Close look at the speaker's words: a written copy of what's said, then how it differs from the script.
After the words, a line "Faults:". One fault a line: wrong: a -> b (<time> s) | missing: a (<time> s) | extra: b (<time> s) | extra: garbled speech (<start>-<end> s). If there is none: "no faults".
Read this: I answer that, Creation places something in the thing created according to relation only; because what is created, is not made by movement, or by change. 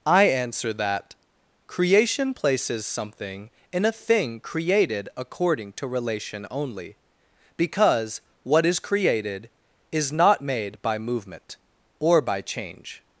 I answer that, Creation places something in a thing created according to relation only; because what is created, is not made by movement, or by change.
Faults:
wrong: the -> a (3.9 s)